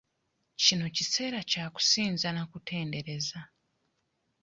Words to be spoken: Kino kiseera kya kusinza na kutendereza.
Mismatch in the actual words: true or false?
false